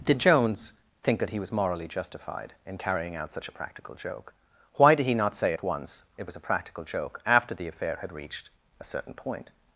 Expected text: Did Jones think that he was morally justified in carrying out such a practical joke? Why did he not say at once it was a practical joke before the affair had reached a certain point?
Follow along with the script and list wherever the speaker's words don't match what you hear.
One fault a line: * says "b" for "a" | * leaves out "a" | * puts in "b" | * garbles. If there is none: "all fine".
* says "after" for "before"